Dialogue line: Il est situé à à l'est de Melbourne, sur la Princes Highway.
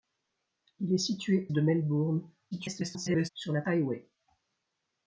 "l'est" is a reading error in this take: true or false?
true